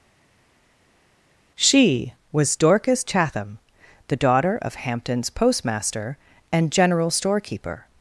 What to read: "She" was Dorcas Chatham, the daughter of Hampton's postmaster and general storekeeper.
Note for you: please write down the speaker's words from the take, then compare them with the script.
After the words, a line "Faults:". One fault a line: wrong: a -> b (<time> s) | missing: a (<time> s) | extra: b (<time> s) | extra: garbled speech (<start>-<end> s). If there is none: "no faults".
"She" was Dorcas Chatham, the daughter of Hampton's postmaster and general storekeeper.
Faults:
no faults